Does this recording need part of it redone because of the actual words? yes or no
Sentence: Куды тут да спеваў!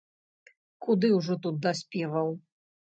yes